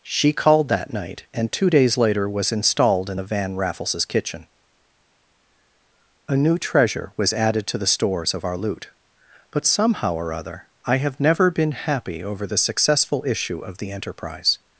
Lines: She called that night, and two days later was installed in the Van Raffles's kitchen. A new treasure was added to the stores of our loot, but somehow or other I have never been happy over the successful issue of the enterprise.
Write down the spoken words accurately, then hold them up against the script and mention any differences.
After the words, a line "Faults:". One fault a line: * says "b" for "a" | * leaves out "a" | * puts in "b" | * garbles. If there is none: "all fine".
She called that night, and two days later was installed in the Van Raffles's kitchen. A new treasure was added to the stores of our loot, but somehow or other I have never been happy over the successful issue of the enterprise.
Faults:
all fine